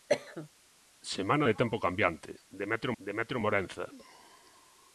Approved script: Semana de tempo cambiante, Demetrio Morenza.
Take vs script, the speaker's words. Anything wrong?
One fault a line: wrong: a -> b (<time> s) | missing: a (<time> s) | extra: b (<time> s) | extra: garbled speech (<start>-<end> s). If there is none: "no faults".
extra: Demetrio (3.0 s)